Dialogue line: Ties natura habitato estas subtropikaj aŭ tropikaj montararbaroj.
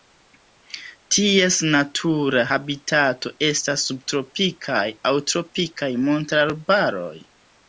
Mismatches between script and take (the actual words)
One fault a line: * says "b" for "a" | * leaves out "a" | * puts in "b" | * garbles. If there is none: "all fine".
all fine